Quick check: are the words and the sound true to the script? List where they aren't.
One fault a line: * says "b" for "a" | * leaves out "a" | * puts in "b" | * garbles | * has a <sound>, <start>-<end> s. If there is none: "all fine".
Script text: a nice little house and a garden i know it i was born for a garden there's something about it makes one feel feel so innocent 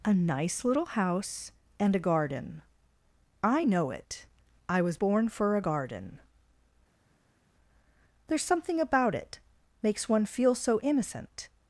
* leaves out "feel"